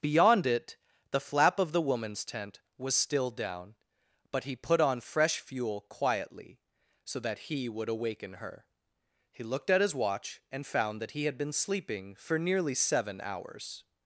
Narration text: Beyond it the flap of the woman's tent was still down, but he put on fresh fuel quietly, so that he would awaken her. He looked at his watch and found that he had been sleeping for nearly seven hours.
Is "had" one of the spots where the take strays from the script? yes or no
no